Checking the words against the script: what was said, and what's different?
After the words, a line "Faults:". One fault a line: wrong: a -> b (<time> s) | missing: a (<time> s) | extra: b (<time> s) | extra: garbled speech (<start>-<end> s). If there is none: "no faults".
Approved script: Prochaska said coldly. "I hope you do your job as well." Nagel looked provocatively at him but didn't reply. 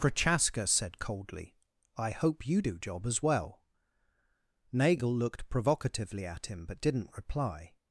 Prochaska said coldly. "I hope you do job as well." Nagel looked provocatively at him but didn't reply.
Faults:
missing: your (2.8 s)